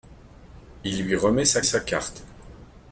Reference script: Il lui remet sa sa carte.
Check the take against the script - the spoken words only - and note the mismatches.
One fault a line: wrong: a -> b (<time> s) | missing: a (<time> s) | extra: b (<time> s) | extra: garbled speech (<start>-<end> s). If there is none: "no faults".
no faults